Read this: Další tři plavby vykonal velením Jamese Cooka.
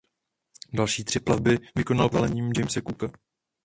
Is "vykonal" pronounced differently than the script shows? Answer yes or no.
no